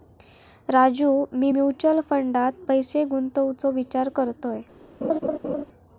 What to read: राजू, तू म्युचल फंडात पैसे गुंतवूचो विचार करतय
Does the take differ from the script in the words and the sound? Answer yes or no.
yes